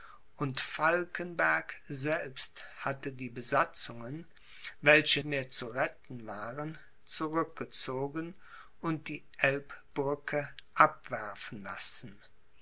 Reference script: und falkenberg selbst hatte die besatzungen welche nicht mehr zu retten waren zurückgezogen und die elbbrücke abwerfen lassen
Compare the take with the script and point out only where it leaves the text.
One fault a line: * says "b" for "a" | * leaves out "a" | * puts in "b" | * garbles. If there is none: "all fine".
* leaves out "nicht"